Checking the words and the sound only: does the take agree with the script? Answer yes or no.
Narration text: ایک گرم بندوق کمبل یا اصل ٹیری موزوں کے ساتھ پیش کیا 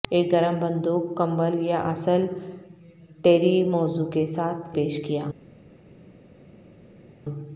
yes